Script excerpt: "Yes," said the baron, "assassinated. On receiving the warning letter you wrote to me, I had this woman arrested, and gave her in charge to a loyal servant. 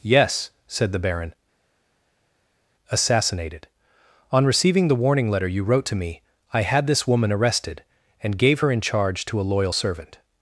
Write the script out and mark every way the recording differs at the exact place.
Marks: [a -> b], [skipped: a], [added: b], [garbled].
"Yes," said the baron, "assassinated. On receiving the warning letter you wrote to me, I had this woman arrested, and gave her in charge to a loyal servant.